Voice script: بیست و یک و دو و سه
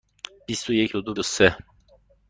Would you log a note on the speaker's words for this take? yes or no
no